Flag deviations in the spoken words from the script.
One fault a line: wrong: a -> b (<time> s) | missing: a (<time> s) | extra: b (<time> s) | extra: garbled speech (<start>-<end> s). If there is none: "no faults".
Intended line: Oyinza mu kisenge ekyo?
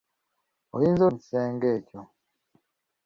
no faults